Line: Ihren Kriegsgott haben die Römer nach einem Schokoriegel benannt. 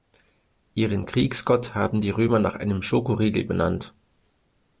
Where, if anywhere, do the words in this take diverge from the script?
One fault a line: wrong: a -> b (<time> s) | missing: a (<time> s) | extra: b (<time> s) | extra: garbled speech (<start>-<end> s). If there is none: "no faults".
no faults